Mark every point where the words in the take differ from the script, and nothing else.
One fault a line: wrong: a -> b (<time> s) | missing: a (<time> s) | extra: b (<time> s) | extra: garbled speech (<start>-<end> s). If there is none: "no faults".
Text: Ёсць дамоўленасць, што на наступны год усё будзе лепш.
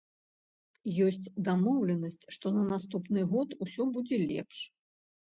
no faults